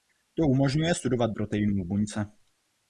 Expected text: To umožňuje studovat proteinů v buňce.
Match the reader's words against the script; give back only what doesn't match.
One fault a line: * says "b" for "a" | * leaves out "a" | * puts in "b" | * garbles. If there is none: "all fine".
all fine